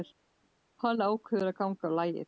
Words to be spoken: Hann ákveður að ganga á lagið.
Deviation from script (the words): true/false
false